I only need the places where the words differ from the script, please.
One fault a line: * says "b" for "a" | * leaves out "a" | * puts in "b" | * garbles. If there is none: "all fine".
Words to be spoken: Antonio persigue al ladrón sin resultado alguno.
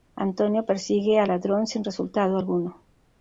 all fine